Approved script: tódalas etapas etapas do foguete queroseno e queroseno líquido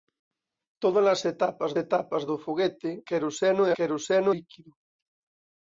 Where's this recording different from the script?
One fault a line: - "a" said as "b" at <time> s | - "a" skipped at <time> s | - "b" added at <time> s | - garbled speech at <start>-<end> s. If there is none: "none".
none